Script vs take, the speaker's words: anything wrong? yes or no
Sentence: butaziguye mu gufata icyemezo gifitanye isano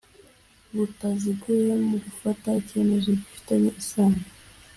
no